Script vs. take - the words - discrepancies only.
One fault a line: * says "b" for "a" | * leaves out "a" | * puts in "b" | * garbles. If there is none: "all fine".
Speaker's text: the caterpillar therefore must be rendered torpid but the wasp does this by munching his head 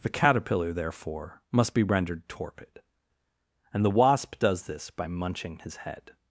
* says "and" for "but"